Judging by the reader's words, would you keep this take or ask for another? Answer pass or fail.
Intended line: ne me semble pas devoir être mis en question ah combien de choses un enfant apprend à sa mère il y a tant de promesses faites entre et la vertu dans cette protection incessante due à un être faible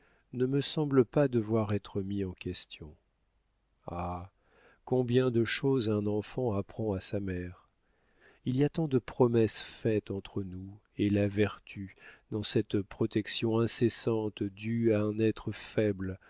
fail